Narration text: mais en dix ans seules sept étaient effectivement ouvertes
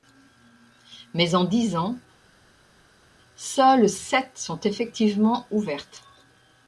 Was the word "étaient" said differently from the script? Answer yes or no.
yes